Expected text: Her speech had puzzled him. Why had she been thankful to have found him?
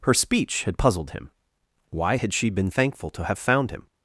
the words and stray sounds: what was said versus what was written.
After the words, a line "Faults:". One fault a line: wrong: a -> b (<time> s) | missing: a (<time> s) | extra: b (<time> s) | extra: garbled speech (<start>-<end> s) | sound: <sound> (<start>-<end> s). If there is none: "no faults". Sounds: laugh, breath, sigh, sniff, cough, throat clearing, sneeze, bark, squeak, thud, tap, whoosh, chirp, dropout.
Her speech had puzzled him. Why had she been thankful to have found him?
Faults:
no faults